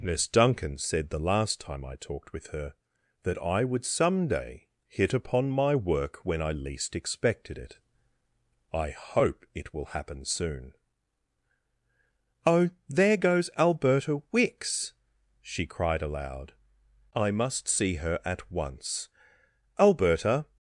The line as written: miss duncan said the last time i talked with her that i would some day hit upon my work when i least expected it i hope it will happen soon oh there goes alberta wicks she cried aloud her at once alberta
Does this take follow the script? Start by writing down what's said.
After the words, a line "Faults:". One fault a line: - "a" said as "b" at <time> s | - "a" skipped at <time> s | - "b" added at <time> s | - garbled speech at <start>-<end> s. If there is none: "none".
miss duncan said the last time i talked with her that i would some day hit upon my work when i least expected it i hope it will happen soon oh there goes alberta wicks she cried aloud i must see her at once alberta
Faults:
- "i must see" added at 17.1 s